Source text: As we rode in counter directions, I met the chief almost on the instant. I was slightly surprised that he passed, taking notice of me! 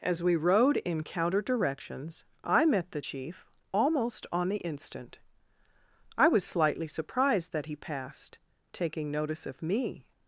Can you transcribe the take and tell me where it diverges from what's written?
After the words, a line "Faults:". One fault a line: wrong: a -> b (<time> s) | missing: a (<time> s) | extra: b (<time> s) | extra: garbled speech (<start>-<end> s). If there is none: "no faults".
As we rode in counter directions, I met the chief almost on the instant. I was slightly surprised that he passed, taking notice of me!
Faults:
no faults